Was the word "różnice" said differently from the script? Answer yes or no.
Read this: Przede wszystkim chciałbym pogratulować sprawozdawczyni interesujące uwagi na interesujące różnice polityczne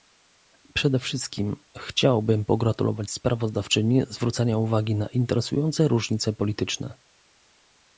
no